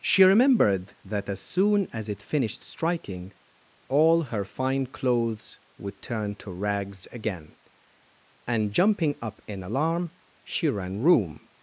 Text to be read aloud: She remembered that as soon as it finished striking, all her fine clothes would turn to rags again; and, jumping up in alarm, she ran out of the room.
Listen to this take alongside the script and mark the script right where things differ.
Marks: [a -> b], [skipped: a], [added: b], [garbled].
She remembered that as soon as it finished striking, all her fine clothes would turn to rags again; and, jumping up in alarm, she ran [skipped: out of the] room.